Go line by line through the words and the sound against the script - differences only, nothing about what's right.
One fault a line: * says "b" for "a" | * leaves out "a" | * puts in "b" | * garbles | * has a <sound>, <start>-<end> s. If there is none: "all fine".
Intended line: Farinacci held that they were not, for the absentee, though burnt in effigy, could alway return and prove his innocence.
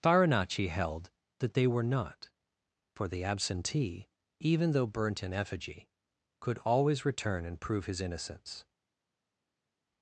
* puts in "even"
* says "always" for "alway"